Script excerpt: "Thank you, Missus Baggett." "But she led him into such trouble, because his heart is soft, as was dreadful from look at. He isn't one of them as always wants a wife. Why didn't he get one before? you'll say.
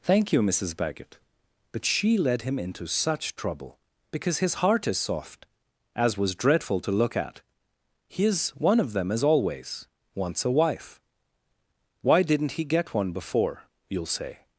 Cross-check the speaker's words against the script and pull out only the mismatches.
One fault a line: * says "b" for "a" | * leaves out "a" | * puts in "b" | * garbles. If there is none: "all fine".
* says "to" for "from"
* says "is" for "isn't"